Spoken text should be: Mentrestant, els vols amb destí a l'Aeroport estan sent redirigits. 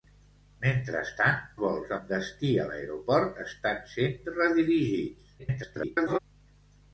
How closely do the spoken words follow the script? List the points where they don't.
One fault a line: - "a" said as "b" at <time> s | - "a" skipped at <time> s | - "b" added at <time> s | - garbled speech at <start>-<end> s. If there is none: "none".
- "els" skipped at 1.4 s
- garbled speech at 5.4-6.2 s